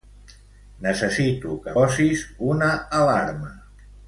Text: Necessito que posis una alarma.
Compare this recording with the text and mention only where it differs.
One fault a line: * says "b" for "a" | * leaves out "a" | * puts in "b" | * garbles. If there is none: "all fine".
all fine